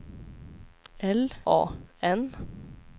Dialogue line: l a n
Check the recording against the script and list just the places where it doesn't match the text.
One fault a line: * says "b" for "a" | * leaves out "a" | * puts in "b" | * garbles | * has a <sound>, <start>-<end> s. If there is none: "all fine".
all fine